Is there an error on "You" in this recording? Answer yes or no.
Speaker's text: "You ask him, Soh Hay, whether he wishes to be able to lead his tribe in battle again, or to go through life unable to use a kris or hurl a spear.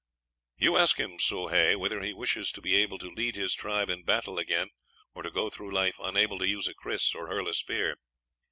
no